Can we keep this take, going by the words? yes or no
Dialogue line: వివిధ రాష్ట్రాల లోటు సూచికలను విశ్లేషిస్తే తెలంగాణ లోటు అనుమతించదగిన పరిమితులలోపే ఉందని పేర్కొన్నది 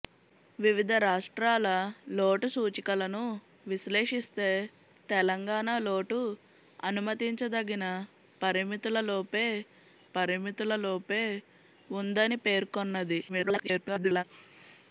no